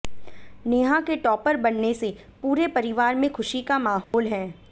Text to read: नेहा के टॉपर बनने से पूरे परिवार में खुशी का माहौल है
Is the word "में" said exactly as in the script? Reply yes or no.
yes